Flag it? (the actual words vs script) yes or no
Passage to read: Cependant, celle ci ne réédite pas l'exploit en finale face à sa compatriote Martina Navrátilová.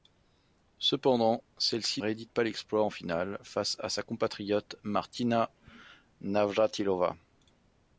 yes